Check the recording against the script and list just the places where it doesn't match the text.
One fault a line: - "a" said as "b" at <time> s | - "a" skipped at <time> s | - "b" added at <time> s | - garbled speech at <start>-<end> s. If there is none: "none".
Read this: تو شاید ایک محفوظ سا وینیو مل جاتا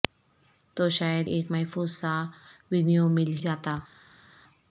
none